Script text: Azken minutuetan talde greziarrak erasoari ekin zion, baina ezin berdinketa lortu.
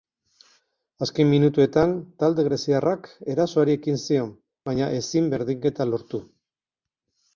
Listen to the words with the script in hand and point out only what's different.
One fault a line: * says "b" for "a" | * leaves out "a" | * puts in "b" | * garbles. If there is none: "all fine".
all fine